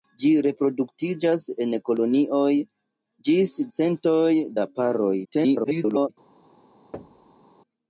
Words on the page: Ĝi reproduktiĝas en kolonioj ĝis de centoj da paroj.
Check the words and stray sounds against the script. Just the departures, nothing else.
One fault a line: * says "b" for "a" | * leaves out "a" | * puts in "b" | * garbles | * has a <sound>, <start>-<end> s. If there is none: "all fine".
* leaves out "de"
* garbles
* has a thud, 6.9-7.4 s